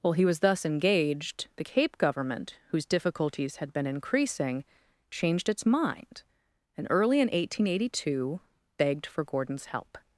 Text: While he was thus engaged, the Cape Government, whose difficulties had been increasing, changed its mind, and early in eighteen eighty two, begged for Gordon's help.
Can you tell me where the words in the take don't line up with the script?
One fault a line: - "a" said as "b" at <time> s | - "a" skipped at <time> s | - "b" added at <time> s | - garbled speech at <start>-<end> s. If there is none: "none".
none